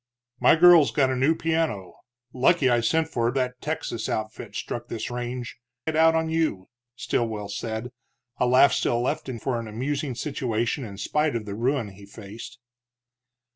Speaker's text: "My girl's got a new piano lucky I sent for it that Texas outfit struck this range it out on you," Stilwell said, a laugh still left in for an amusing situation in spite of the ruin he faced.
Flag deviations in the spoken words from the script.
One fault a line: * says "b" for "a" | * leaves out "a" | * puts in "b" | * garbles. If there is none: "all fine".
all fine